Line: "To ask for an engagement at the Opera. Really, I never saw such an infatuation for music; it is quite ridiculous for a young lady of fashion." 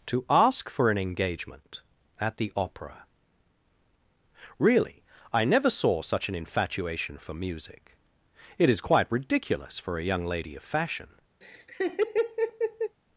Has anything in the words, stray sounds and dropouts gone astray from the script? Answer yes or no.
yes